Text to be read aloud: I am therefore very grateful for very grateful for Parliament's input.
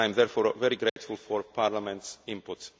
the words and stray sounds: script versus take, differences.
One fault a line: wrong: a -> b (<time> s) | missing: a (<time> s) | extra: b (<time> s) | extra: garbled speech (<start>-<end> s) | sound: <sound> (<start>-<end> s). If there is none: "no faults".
sound: dropout (0.9-1.0 s)
missing: very grateful for (1.4 s)